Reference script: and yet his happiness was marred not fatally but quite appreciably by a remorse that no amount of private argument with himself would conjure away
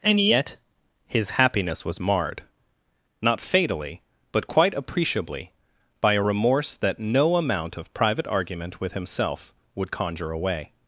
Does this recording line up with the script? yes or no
yes